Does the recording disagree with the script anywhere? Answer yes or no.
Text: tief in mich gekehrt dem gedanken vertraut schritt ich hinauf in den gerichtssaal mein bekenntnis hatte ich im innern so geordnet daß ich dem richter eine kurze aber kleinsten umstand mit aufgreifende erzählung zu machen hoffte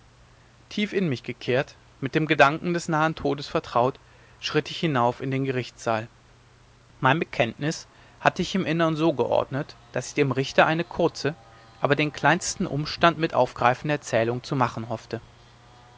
yes